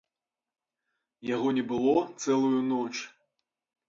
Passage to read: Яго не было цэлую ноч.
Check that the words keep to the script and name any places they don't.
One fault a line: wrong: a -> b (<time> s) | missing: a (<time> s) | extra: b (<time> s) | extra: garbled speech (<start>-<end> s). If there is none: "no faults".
no faults